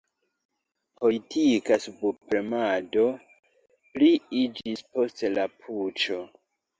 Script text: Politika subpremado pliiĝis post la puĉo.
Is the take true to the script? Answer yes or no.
yes